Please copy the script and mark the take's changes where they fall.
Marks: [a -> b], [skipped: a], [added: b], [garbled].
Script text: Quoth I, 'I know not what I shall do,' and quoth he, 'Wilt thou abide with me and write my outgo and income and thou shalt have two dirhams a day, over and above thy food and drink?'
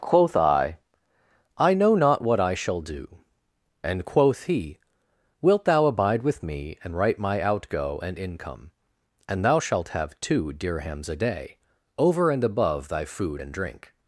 Quoth I, 'I know not what I shall do,' and quoth he, 'Wilt thou abide with me and write my outgo and income and thou shalt have two dirhams a day, over and above thy food and drink?'